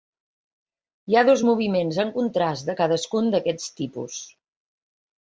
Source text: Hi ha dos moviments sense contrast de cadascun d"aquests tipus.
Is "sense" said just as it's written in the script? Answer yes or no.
no